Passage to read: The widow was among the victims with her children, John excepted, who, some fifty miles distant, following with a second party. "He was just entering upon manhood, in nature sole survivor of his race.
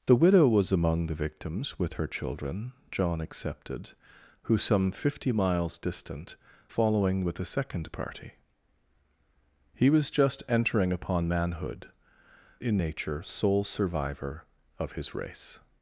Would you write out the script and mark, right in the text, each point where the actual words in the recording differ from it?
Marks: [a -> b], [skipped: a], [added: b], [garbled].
The widow was among the victims with her children, John excepted, who, some fifty miles distant, following with a second party. "He was just entering upon manhood, in nature sole survivor of his race.